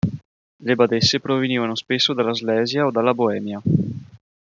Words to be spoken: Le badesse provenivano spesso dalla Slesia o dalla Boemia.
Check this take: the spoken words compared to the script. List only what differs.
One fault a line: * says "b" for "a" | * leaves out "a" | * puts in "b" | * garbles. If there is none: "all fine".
all fine